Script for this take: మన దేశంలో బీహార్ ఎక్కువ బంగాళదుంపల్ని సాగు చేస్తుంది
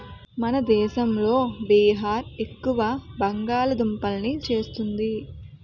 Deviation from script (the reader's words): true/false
true